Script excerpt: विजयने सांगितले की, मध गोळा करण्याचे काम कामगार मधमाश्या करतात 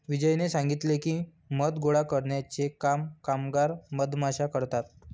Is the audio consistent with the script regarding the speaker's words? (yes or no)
yes